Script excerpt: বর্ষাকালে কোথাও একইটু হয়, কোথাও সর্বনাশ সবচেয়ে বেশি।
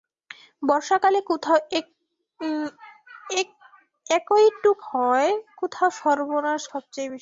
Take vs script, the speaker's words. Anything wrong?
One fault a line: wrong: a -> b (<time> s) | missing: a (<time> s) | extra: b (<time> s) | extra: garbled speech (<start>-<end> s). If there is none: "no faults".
no faults